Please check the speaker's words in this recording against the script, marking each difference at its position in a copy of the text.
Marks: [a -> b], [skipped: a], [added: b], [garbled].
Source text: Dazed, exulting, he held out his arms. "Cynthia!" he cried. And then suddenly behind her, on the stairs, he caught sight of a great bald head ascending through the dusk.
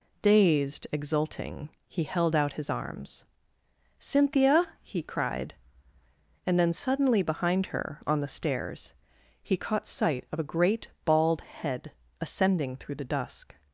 Dazed, exulting, he held out his arms. "Cynthia!" he cried. And then suddenly behind her, on the stairs, he caught sight of a great bald head ascending through the dusk.